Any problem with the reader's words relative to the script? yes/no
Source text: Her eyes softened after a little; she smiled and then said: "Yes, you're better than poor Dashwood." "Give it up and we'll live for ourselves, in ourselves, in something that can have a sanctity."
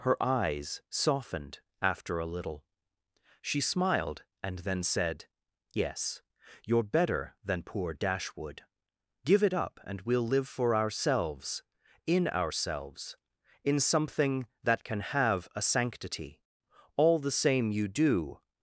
yes